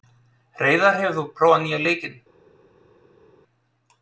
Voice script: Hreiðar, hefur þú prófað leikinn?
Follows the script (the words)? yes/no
no